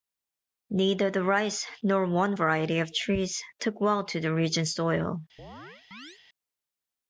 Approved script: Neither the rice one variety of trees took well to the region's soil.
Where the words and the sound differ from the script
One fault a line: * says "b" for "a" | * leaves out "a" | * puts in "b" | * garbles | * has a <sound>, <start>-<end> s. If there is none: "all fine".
* puts in "nor"
* has a chirp, 5.4-6.2 s